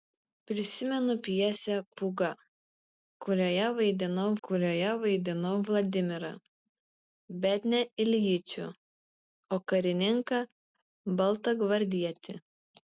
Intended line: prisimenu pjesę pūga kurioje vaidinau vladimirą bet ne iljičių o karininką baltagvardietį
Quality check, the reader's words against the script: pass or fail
fail